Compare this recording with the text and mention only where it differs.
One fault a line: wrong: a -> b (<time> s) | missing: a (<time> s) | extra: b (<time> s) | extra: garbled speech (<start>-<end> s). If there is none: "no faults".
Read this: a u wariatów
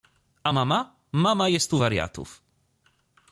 extra: mama mama jest (0.5 s)